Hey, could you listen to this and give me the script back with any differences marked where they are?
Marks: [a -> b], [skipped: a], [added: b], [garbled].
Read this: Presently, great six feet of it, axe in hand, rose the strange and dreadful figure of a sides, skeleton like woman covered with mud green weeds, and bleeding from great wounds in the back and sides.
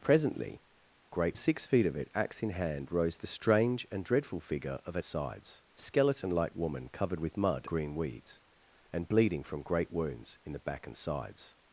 Presently, great six feet of it, axe in hand, rose the strange and dreadful figure of a sides, skeleton like woman covered with mud green weeds, and bleeding from great wounds in the back and sides.